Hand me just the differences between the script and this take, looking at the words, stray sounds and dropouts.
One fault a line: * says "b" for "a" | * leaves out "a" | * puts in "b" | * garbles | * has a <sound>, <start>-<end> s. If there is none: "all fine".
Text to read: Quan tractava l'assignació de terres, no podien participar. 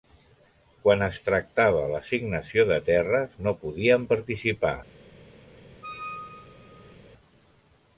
* puts in "es"
* has a squeak, 5.8-7.0 s